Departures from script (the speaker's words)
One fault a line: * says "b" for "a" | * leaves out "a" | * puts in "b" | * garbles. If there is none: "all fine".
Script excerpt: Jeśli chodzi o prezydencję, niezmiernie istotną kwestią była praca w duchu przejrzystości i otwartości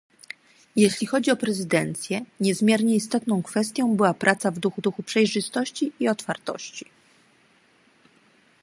* puts in "duchu"